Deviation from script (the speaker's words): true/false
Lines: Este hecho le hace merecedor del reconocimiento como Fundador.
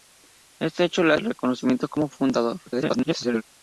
true